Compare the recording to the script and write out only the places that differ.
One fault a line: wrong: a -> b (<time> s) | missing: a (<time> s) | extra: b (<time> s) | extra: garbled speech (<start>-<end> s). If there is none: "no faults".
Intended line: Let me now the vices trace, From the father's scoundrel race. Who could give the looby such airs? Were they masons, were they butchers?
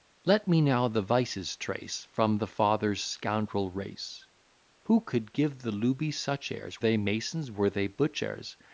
missing: Were (6.8 s)